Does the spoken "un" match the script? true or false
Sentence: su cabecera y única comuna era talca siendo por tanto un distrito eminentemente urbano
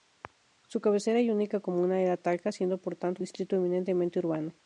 false